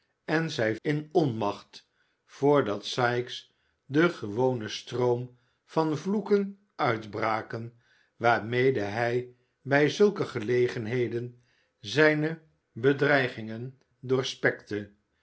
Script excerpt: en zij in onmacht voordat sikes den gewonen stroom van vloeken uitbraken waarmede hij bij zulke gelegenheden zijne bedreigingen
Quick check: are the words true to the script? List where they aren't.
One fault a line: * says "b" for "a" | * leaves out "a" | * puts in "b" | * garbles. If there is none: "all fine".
all fine